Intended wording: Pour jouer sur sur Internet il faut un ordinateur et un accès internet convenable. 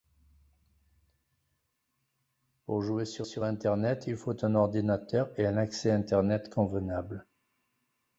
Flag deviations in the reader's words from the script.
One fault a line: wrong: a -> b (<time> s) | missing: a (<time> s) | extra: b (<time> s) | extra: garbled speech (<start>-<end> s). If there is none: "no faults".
no faults